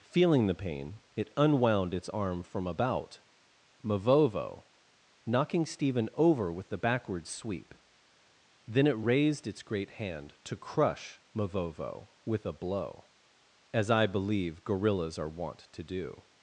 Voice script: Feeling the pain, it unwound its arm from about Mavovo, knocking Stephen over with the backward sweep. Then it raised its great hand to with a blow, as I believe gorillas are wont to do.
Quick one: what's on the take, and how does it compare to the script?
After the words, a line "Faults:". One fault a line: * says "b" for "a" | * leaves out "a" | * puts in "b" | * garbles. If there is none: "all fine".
Feeling the pain, it unwound its arm from about Mavovo, knocking Stephen over with the backward sweep. Then it raised its great hand to crush Mavovo with a blow, as I believe gorillas are wont to do.
Faults:
* puts in "crush Mavovo"